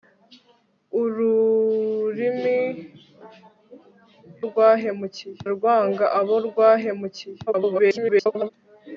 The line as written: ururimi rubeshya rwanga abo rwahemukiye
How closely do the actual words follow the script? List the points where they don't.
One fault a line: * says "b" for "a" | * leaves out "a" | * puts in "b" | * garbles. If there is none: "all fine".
* says "rwahemukiye" for "rubeshya"
* garbles